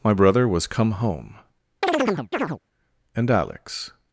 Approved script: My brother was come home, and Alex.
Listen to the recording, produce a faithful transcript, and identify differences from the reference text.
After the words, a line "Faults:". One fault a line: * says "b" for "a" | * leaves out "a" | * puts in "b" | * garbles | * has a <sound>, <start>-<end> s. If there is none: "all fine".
My brother was come home, and Alex.
Faults:
* has a chirp, 1.8-2.6 s